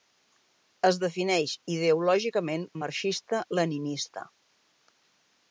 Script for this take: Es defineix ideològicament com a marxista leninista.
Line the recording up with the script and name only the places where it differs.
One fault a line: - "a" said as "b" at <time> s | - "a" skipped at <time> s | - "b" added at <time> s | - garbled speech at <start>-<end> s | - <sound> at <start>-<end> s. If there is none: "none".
- "com" skipped at 2.6 s